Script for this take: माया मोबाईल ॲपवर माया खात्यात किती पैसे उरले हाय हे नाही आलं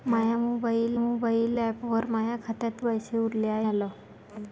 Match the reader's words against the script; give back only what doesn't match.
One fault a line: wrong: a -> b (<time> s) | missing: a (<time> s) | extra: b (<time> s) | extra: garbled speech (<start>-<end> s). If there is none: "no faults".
extra: मोबाईल (1.0 s)
missing: किती (2.8 s)
missing: हे नाही (3.7 s)